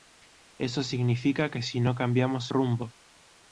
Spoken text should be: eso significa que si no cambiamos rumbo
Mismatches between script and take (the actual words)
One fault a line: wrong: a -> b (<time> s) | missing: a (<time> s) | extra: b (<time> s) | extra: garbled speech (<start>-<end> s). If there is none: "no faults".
no faults